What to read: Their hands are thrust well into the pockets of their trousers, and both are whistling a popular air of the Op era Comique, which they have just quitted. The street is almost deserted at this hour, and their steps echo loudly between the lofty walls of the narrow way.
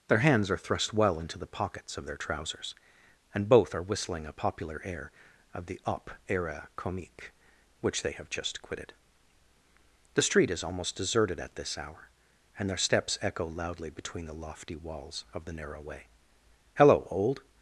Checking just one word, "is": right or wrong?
right